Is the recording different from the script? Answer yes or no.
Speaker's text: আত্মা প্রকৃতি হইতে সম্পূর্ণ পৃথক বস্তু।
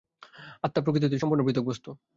no